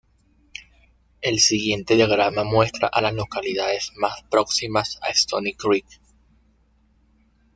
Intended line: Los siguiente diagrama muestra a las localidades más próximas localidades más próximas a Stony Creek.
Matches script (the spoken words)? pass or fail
fail